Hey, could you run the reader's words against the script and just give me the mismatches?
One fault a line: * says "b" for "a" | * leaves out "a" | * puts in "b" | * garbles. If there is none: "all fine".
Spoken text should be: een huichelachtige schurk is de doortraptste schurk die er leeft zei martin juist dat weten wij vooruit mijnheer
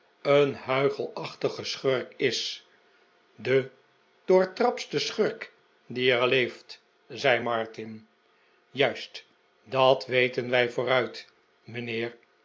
all fine